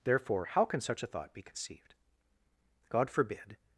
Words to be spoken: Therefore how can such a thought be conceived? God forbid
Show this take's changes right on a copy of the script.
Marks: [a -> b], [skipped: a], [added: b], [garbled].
Therefore how can such a thought be conceived? God forbid